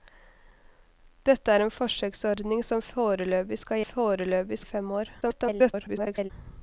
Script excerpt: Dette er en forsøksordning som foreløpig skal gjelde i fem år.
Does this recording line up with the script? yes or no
no